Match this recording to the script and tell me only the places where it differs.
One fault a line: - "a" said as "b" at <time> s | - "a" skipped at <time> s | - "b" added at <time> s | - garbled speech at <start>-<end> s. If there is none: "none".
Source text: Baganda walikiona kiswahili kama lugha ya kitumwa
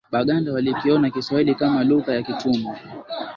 none